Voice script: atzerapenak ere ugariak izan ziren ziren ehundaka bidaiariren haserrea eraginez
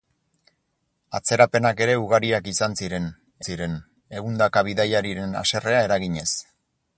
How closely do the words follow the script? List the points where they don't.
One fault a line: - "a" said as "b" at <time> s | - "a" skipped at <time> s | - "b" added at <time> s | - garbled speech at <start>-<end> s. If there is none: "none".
none